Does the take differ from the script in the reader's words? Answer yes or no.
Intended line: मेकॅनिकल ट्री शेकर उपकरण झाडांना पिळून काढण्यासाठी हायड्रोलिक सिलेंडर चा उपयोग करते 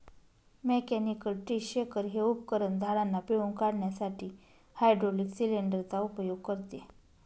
yes